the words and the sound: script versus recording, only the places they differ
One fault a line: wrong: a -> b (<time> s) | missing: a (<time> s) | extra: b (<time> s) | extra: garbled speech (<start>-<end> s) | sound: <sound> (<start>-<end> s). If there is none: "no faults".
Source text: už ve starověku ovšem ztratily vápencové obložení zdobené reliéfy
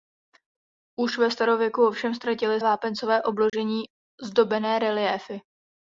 sound: dropout (3.5-3.5 s)